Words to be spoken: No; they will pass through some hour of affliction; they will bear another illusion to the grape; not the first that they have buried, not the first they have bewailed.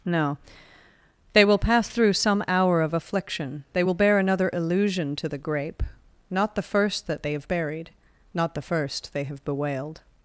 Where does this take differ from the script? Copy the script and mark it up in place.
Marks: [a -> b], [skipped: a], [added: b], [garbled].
No; they will pass through some hour of affliction; they will bear another illusion to the grape; not the first that they have buried, not the first they have bewailed.